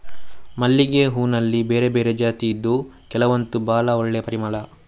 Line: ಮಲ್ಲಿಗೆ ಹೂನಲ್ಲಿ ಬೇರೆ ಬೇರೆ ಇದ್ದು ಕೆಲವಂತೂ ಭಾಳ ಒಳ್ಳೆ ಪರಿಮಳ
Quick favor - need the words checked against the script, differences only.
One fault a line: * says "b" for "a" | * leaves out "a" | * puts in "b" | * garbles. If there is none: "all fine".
* puts in "ಜಾತಿ"